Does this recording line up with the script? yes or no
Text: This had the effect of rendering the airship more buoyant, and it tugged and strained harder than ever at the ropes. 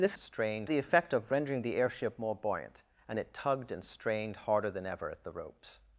no